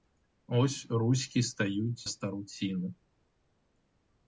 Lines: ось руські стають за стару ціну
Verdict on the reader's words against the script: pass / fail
fail